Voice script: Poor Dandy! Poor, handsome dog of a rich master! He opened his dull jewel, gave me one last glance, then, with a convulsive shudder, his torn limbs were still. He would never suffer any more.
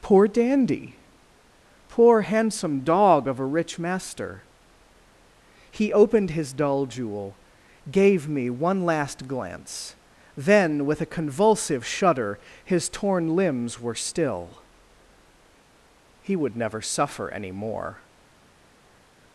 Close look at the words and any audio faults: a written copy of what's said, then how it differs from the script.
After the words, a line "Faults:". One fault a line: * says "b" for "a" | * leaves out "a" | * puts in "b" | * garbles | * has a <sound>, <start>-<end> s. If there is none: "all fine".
Poor Dandy! Poor, handsome dog of a rich master! He opened his dull jewel, gave me one last glance, then, with a convulsive shudder, his torn limbs were still. He would never suffer any more.
Faults:
all fine